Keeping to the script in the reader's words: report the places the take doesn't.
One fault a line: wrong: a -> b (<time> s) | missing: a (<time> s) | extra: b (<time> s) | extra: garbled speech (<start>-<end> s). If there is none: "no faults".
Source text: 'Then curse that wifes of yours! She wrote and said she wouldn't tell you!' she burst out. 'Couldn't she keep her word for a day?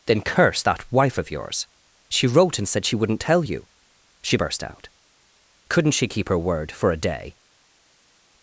wrong: wifes -> wife (0.9 s)